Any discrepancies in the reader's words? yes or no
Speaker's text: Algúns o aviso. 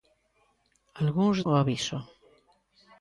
no